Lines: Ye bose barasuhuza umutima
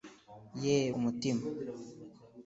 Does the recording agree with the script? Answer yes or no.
no